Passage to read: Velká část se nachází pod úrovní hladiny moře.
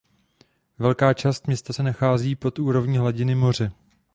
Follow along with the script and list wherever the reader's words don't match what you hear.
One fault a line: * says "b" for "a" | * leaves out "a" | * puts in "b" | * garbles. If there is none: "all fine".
* puts in "města"